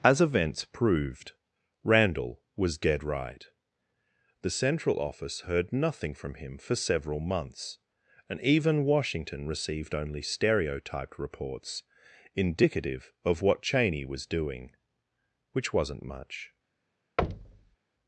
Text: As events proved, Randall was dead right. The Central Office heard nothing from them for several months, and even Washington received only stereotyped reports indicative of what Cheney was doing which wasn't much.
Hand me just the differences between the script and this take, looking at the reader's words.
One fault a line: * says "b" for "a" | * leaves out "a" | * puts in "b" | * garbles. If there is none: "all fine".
* says "him" for "them"